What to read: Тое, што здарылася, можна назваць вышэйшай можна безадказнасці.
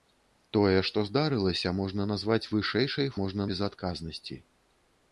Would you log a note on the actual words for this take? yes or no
no